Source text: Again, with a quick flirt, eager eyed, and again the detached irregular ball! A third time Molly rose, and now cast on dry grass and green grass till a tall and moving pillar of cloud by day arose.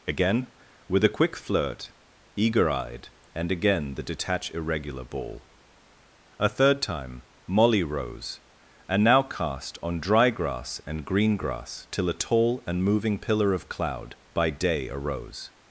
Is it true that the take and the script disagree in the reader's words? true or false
true